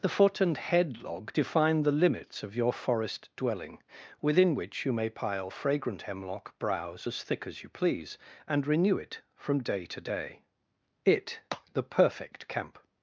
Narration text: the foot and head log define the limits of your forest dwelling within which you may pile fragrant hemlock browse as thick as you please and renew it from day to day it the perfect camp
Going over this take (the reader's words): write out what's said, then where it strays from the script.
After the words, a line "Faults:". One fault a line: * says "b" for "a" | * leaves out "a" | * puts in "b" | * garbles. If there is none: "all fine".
the foot and head log define the limits of your forest dwelling within which you may pile fragrant hemlock browse as thick as you please and renew it from day to day it the perfect camp
Faults:
all fine